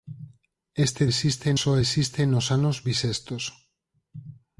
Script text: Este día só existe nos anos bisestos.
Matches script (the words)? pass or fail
fail